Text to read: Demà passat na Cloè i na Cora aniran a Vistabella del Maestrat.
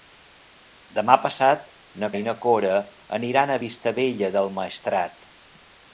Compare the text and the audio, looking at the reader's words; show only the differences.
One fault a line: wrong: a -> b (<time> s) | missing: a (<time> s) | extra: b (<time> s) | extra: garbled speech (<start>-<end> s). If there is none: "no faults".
missing: Cloè (2.1 s)